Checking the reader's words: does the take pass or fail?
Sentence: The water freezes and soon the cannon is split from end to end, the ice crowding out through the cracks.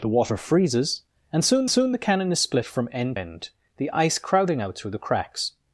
fail